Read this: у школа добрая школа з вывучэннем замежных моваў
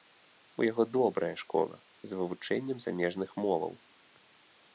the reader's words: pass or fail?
fail